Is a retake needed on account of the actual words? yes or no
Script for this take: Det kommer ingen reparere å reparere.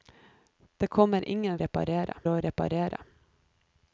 no